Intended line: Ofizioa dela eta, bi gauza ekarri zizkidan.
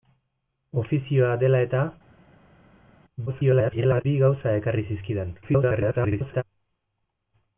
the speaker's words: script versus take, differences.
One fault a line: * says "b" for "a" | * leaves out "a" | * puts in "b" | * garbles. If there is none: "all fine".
* garbles
* garbles